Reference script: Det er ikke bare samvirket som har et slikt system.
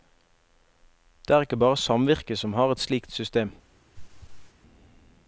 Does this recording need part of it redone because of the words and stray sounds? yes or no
yes